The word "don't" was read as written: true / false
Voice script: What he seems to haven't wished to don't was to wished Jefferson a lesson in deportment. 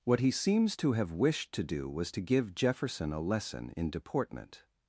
false